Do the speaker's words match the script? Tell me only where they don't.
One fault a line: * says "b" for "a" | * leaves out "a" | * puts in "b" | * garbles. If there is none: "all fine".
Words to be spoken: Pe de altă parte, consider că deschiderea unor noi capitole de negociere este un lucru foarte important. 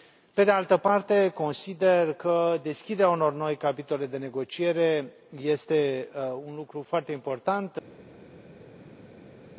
all fine